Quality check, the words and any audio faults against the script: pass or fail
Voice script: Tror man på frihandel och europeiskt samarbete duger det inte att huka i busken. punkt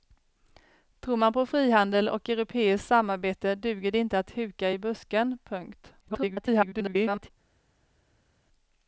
fail